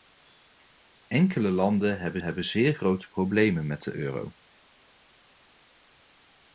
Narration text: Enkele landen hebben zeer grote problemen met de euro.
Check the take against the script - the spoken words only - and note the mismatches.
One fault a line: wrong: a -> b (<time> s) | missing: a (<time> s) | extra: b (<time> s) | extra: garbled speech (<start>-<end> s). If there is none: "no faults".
extra: hebben (2.2 s)